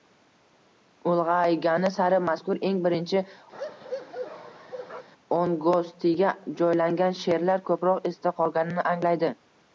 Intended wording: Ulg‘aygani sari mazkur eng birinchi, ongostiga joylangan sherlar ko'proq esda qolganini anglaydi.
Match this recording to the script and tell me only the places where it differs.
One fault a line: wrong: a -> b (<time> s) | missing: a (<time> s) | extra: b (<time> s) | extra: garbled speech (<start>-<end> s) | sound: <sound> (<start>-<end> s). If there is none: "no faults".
sound: bark (3.5-5.1 s)